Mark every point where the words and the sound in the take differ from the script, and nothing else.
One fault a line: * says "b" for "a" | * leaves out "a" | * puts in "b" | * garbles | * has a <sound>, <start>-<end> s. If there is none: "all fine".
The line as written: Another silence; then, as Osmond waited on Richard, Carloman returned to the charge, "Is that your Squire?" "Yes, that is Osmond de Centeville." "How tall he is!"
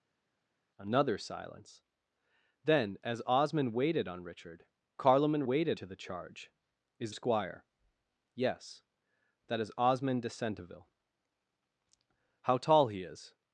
* says "waited" for "returned"
* leaves out "that your"